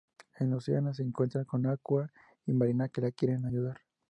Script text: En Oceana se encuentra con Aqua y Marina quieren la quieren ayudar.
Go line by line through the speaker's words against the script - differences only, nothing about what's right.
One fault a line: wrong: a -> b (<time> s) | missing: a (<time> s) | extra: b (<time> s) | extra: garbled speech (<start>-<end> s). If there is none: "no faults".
wrong: quieren -> que (2.9 s)